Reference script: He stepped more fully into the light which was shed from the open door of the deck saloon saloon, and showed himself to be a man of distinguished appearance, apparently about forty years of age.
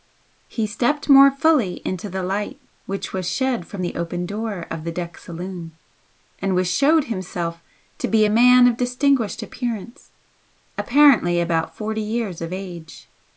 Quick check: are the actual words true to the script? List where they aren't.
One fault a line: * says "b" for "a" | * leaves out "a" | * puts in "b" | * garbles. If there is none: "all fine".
* leaves out "saloon"